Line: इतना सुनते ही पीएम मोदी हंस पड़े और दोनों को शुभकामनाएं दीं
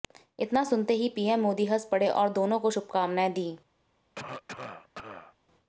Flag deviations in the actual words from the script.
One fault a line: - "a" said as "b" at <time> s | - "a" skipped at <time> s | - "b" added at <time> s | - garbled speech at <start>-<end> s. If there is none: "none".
none